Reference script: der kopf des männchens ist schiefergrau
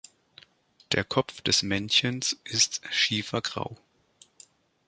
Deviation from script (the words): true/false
false